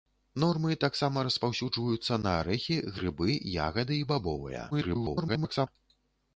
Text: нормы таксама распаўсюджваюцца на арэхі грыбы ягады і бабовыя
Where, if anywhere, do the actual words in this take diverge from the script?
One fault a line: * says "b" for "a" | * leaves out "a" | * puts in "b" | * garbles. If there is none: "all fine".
* garbles